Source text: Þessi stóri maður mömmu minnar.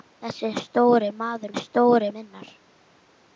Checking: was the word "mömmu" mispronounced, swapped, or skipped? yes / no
yes